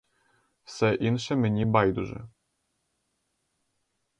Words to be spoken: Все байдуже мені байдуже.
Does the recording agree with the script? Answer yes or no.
no